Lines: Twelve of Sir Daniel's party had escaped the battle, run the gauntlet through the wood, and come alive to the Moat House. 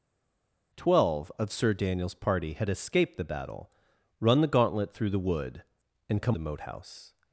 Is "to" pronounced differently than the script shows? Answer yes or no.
yes